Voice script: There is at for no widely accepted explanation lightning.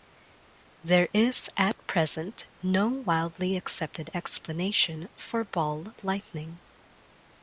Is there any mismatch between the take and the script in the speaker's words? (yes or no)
yes